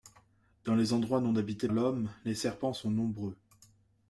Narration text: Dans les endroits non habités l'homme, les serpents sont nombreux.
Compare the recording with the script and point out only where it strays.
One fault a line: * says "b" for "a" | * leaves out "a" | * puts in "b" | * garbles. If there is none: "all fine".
all fine